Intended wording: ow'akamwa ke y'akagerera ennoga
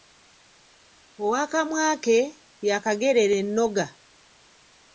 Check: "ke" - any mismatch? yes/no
no